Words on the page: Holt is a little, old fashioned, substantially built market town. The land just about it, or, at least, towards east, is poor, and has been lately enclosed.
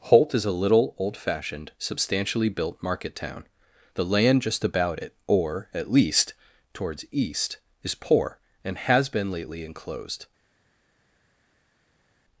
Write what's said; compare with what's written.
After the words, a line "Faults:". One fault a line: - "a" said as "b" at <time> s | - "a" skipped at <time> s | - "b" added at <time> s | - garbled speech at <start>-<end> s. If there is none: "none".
Holt is a little, old fashioned, substantially built market town. The land just about it, or, at least, towards east, is poor, and has been lately enclosed.
Faults:
none